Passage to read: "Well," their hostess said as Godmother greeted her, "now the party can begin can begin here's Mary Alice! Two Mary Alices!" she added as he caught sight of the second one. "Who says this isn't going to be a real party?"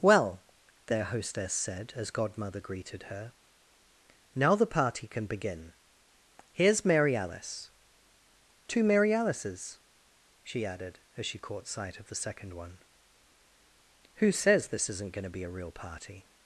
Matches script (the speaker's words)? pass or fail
fail